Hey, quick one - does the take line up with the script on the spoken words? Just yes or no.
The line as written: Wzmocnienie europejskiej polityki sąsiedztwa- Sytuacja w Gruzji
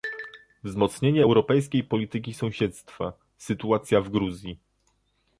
yes